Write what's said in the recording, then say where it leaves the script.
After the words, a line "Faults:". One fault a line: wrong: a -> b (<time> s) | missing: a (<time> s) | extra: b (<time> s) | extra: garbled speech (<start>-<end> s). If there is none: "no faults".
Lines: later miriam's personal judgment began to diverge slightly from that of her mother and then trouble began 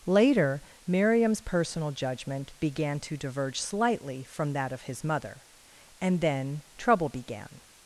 later miriam's personal judgment began to diverge slightly from that of his mother and then trouble began
Faults:
wrong: her -> his (4.8 s)